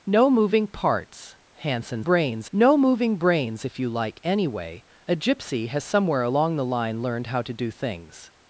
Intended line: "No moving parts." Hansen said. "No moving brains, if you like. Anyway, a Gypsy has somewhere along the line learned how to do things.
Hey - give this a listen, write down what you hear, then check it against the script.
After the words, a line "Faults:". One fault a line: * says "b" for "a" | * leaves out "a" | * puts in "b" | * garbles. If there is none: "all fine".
"No moving parts." Hansen brains. "No moving brains, if you like. Anyway, a Gypsy has somewhere along the line learned how to do things.
Faults:
* says "brains" for "said"